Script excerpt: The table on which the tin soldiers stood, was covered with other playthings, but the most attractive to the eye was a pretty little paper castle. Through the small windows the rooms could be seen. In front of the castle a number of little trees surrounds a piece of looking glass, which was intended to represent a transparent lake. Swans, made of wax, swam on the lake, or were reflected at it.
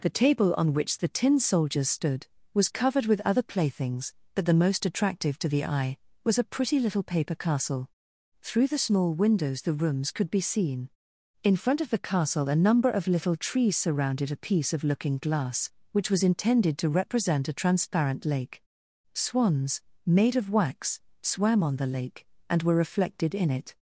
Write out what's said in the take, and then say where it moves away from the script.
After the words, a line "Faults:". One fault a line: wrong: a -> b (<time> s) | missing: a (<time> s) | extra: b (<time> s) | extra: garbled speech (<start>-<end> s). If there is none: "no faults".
The table on which the tin soldiers stood, was covered with other playthings, but the most attractive to the eye was a pretty little paper castle. Through the small windows the rooms could be seen. In front of the castle a number of little trees surrounded a piece of looking glass, which was intended to represent a transparent lake. Swans, made of wax, swam on the lake, and were reflected in it.
Faults:
wrong: surrounds -> surrounded (13.8 s)
wrong: or -> and (22.5 s)
wrong: at -> in (23.4 s)